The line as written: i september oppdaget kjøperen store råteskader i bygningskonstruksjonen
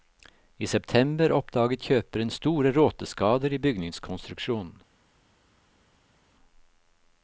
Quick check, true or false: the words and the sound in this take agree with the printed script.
true